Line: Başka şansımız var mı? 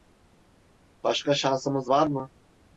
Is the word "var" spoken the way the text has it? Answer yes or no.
yes